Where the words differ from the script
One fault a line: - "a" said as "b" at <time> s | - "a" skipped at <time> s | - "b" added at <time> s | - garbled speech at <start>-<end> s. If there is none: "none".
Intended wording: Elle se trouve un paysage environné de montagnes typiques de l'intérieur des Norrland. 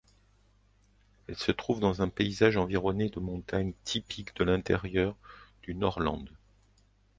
- "dans" added at 1.8 s
- "des" said as "du" at 5.6 s